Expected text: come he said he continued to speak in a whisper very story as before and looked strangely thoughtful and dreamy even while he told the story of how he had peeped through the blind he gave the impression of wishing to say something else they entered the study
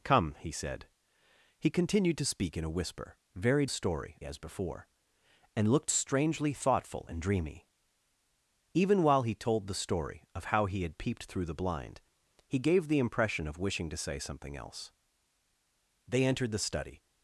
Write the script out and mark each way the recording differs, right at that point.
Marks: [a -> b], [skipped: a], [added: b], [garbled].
come he said he continued to speak in a whisper very story as before and looked strangely thoughtful and dreamy even while he told the story of how he had peeped through the blind he gave the impression of wishing to say something else they entered the study